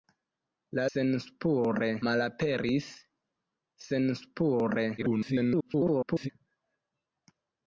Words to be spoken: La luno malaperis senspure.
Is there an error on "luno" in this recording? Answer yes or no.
yes